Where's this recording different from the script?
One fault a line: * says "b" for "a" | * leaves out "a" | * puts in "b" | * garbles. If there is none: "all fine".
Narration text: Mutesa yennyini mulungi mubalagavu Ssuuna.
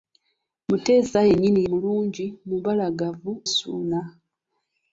all fine